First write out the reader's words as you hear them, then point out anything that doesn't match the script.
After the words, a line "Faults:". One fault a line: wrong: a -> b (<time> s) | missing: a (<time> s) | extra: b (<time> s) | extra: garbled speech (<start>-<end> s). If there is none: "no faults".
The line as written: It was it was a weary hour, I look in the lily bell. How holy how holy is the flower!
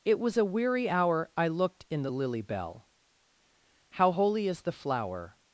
It was a weary hour, I looked in the lily bell. How holy is the flower!
Faults:
missing: it was (0.3 s)
wrong: look -> looked (1.5 s)
missing: how holy (4.5 s)